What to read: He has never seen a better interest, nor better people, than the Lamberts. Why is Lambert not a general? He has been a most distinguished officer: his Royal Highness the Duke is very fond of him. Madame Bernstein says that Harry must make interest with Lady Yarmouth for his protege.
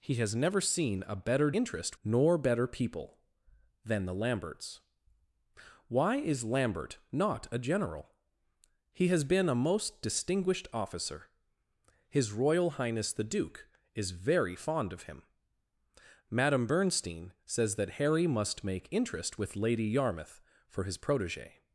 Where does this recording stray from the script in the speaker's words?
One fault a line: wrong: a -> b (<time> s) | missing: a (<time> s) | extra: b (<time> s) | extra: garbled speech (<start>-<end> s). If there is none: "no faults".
no faults